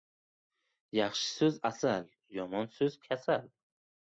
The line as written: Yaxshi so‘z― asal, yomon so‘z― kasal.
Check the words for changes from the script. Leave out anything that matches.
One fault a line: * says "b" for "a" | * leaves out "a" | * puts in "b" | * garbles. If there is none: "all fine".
all fine